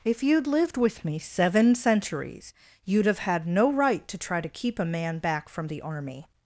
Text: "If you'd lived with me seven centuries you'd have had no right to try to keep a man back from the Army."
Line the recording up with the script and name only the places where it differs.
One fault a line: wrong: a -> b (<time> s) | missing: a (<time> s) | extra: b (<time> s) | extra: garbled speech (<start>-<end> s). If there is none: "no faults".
no faults